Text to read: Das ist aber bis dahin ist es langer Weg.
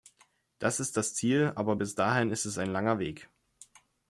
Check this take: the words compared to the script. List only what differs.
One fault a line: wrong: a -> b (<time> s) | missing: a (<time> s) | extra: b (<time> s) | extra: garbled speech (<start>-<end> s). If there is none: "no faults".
extra: das Ziel (1.0 s)
extra: ein (2.6 s)